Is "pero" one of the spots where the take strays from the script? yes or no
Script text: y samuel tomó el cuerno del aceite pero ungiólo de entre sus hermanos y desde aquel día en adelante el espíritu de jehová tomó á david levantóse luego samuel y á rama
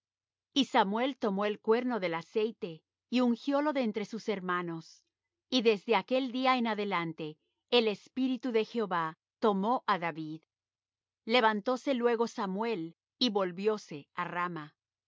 yes